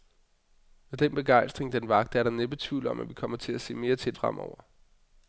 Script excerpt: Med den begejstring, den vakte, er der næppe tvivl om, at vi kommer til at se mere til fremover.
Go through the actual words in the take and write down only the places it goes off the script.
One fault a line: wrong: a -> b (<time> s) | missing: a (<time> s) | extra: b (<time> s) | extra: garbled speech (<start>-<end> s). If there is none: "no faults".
no faults